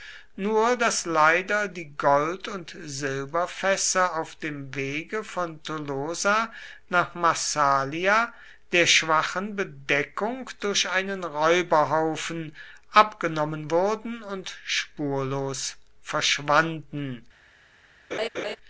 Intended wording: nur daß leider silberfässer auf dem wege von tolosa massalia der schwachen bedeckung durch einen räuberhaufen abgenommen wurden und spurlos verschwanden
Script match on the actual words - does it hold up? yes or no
no